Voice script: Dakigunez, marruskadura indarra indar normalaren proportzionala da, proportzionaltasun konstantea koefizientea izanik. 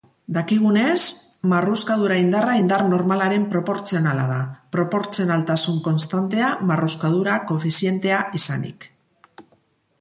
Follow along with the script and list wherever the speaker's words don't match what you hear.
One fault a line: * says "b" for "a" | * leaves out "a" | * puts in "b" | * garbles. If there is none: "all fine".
* puts in "marruskadura"